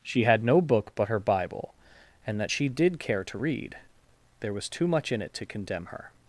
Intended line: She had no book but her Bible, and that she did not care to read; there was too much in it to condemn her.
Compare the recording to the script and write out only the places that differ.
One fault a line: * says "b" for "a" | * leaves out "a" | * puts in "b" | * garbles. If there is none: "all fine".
* leaves out "not"